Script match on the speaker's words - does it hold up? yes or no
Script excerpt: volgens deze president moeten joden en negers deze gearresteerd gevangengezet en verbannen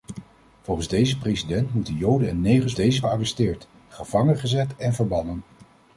yes